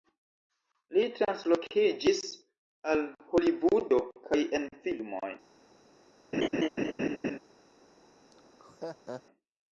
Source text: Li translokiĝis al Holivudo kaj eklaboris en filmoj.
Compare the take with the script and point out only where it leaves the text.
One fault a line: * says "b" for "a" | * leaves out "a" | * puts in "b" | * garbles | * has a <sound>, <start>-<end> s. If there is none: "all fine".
* leaves out "eklaboris"
* has a laugh, 6.3-7.4 s
* has a laugh, 8.3-9.2 s